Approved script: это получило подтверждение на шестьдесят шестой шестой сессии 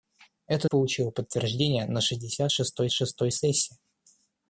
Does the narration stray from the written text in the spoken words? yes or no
no